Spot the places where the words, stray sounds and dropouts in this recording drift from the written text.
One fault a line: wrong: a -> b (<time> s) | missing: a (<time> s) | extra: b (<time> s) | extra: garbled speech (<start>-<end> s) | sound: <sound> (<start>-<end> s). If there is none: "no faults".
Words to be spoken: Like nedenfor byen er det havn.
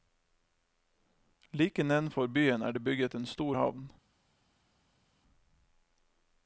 extra: bygget en stor (2.8 s)